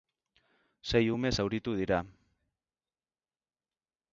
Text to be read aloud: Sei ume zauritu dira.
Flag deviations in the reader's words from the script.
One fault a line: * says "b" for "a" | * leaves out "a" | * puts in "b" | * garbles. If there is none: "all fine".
all fine